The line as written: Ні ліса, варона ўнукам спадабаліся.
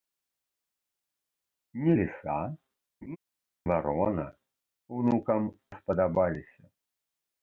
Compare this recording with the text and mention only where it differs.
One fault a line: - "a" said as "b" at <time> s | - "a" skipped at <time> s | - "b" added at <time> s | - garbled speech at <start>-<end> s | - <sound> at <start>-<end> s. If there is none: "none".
- laugh at 3.0-3.2 s